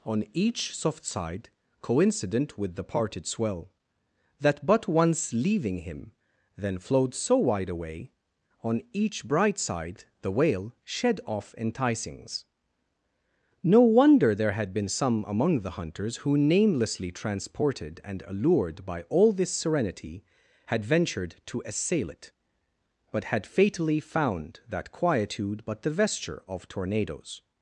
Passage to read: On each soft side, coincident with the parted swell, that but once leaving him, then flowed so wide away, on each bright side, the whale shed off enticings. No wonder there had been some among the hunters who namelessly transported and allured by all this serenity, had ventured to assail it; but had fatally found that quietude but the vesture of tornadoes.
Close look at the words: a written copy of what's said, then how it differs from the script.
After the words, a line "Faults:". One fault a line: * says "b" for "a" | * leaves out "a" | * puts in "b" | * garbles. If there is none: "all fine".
On each soft side, coincident with the parted swell, that but once leaving him, then flowed so wide away, on each bright side, the whale shed off enticings. No wonder there had been some among the hunters who namelessly transported and allured by all this serenity, had ventured to assail it; but had fatally found that quietude but the vesture of tornadoes.
Faults:
all fine